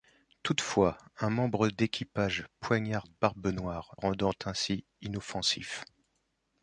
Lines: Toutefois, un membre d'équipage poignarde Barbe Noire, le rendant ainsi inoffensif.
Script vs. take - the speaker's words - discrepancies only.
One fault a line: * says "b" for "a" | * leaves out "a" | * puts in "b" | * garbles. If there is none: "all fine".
* leaves out "le"